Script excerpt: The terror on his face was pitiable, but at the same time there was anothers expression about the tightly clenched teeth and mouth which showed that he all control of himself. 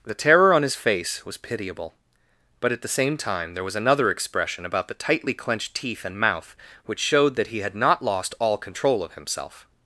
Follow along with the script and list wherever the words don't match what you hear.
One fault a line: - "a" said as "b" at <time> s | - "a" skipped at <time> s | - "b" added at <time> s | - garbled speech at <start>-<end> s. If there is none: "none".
- "anothers" said as "another" at 3.8 s
- "had not lost" added at 7.6 s